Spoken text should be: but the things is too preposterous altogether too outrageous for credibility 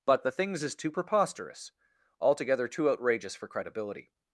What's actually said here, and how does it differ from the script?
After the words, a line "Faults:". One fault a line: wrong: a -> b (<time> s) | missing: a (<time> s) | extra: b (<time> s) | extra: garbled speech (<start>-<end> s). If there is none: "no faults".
but the things is too preposterous altogether too outrageous for credibility
Faults:
no faults